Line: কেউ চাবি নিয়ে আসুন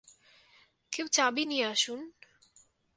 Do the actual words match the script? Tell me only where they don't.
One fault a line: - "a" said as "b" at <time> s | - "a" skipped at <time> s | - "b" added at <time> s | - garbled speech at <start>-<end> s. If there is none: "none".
none